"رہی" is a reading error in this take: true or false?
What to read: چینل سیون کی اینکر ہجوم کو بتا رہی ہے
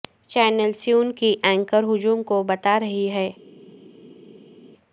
false